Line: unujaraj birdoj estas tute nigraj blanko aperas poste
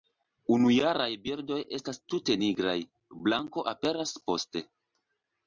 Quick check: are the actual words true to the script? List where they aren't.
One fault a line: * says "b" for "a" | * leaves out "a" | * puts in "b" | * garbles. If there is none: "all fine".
all fine